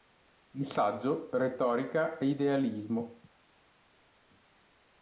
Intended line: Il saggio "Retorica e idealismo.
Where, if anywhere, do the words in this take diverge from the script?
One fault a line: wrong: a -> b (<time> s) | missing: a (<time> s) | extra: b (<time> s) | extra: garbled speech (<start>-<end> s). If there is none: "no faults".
no faults